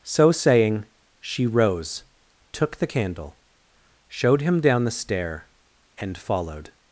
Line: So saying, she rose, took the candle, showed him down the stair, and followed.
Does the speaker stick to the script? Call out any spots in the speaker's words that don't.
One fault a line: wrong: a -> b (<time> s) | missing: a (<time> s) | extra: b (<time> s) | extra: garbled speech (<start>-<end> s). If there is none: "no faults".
no faults